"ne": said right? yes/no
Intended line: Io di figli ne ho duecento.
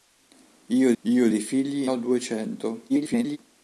no